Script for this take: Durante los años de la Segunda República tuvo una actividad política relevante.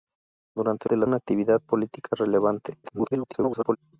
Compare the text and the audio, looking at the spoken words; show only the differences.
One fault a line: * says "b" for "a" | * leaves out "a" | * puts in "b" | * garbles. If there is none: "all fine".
* leaves out "los años"
* leaves out "Segunda República tuvo"
* garbles